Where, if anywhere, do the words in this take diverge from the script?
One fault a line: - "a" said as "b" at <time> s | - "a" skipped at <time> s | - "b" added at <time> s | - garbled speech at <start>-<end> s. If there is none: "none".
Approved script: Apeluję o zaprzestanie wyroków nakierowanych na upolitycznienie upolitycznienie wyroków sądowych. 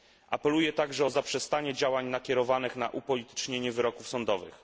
- "także" added at 0.7 s
- "wyroków" said as "działań" at 1.7 s
- "upolitycznienie" skipped at 3.7 s